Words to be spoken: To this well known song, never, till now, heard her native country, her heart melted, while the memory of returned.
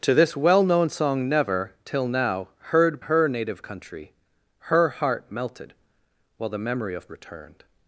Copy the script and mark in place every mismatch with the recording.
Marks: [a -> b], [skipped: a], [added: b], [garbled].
To this well known song, never, till now, heard her native country, her heart melted, while the memory of returned.